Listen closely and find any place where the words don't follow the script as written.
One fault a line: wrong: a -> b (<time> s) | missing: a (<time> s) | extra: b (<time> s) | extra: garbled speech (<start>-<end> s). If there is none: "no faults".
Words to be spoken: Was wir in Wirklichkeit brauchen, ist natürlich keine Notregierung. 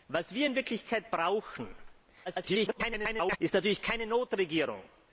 extra: garbled speech (2.3-3.4 s)